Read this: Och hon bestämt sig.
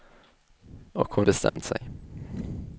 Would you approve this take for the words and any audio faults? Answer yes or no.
no